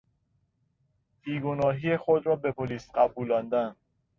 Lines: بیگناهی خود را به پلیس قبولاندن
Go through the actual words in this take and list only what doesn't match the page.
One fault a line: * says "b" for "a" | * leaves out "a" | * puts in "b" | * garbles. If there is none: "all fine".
all fine